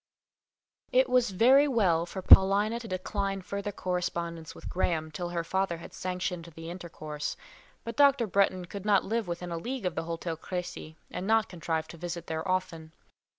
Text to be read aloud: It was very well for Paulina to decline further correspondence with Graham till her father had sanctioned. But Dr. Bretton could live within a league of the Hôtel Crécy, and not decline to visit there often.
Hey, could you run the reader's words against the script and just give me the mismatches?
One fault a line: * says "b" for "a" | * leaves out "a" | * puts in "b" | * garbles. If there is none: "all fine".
* puts in "the intercourse"
* puts in "not"
* says "contrive" for "decline"